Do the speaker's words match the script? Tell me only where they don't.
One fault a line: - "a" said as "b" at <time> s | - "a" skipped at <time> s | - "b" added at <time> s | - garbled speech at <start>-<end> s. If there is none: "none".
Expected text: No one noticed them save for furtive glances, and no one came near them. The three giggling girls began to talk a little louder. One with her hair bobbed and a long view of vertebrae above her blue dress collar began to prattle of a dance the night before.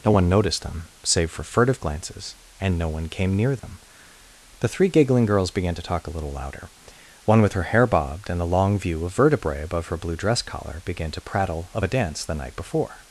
none